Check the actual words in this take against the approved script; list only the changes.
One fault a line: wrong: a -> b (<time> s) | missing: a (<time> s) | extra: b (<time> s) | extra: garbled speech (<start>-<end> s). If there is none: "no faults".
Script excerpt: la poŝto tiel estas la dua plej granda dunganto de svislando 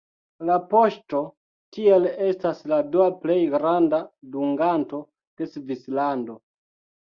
no faults